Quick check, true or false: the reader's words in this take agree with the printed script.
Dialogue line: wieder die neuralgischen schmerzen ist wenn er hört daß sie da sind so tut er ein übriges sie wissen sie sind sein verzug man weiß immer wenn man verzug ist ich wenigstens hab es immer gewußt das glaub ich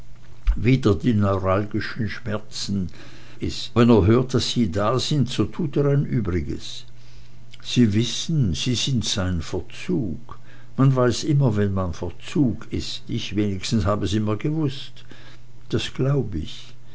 true